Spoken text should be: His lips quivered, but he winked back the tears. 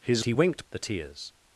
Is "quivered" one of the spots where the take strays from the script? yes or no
yes